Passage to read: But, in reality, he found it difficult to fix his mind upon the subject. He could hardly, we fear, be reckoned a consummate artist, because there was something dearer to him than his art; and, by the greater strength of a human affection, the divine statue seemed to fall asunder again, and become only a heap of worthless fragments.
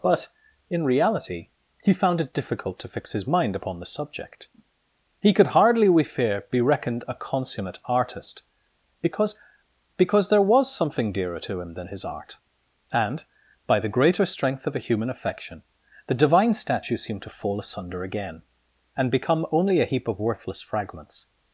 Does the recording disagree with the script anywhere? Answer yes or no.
yes